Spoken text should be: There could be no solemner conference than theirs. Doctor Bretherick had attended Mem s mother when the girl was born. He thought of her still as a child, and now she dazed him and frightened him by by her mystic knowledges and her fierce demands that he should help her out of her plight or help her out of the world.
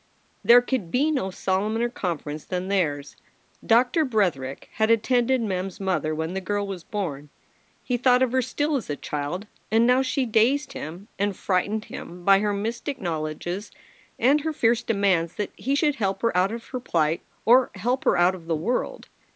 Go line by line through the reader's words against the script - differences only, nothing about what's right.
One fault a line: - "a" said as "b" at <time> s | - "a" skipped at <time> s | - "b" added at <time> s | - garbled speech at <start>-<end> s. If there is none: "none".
- "by" skipped at 12.4 s